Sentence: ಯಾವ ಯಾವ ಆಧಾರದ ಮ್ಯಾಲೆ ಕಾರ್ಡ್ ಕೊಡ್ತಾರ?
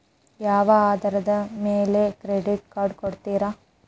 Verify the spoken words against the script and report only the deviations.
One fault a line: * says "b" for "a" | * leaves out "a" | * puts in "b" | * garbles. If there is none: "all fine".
* leaves out "ಯಾವ"
* puts in "ಕ್ರೆಡಿಟ್"